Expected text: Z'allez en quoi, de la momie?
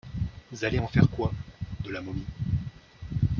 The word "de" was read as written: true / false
true